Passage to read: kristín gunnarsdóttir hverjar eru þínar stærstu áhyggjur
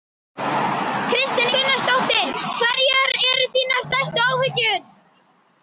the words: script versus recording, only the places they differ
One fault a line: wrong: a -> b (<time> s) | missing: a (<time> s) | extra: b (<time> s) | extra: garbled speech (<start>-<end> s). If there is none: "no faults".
no faults